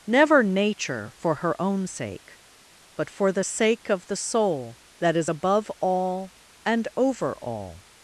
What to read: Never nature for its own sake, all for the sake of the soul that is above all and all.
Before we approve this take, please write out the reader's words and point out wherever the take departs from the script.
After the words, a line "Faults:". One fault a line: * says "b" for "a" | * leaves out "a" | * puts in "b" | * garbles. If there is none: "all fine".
Never nature for her own sake, but for the sake of the soul that is above all and over all.
Faults:
* says "her" for "its"
* says "but" for "all"
* puts in "over"